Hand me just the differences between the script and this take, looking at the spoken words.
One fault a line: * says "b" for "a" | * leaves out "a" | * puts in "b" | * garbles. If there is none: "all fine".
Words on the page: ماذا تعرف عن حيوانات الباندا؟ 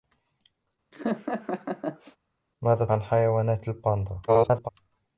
* leaves out "تعرف"
* garbles